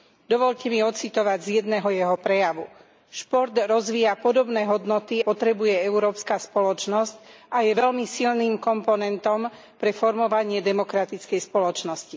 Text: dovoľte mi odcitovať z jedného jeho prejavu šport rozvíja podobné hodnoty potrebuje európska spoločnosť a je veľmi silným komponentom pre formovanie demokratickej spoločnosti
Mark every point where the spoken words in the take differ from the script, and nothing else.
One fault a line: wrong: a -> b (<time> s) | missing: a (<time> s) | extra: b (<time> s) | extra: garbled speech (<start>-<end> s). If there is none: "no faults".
no faults